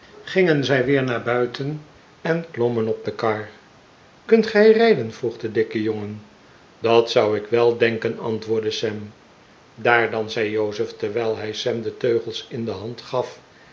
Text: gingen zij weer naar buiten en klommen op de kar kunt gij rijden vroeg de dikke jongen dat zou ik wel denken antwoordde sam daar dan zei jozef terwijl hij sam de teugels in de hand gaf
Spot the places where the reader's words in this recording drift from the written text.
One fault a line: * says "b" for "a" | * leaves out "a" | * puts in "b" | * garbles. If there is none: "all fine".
all fine